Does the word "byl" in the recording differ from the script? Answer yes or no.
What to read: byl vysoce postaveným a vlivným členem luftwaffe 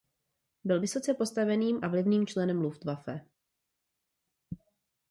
no